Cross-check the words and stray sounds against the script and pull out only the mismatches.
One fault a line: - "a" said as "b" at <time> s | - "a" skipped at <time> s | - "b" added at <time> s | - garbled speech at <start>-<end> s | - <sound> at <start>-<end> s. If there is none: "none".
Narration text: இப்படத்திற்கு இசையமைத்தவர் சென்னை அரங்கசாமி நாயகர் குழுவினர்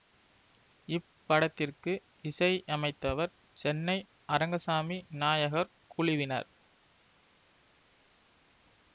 none